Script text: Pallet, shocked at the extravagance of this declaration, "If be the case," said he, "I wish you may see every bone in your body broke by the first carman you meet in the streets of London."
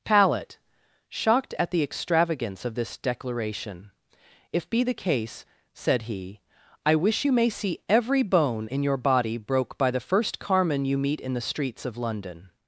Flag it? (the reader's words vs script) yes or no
no